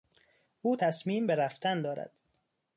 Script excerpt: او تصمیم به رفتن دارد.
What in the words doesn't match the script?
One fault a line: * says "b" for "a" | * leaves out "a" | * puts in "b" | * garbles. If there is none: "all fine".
all fine